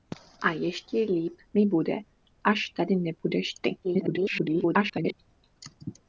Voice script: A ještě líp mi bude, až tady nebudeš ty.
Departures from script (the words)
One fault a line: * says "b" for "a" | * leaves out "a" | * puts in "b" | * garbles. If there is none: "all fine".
* garbles